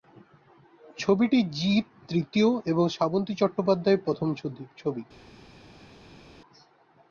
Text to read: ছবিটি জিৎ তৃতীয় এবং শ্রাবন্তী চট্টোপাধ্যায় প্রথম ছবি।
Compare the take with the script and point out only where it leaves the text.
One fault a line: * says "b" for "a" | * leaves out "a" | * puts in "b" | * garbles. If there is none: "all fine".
all fine